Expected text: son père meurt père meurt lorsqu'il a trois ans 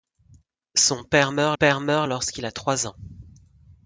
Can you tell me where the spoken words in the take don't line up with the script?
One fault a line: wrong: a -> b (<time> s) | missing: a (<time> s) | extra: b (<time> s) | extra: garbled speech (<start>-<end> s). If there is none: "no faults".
no faults